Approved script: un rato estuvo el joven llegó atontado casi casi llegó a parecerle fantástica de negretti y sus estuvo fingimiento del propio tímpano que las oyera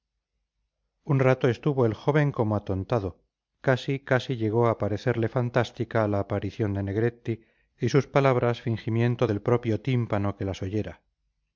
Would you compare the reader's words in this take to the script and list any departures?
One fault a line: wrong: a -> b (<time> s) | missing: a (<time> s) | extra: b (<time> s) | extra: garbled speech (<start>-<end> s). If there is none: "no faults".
wrong: llegó -> como (2.3 s)
extra: la aparición (6.1 s)
wrong: estuvo -> palabras (8.1 s)